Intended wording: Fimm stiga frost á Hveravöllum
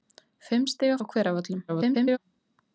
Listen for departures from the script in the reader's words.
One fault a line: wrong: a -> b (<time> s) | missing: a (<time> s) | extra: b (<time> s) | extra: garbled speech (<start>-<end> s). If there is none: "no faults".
missing: frost (0.9 s)
extra: garbled speech (1.7-2.2 s)